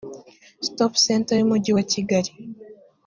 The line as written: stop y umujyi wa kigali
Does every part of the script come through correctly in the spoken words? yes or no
no